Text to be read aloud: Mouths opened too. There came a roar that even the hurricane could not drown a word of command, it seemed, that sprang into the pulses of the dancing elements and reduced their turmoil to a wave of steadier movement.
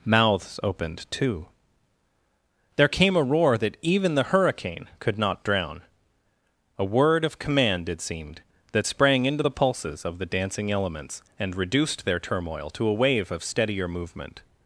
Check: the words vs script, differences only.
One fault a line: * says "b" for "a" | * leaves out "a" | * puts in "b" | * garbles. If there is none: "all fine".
all fine